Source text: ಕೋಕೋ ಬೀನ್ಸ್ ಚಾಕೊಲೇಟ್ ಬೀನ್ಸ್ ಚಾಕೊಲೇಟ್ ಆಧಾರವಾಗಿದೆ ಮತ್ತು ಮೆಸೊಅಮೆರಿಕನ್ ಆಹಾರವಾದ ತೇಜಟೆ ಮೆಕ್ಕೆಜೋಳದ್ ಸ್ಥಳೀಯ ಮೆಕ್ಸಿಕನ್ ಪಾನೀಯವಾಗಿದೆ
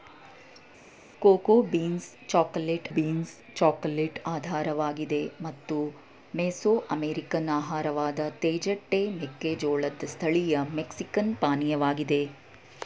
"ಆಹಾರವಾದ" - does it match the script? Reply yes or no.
yes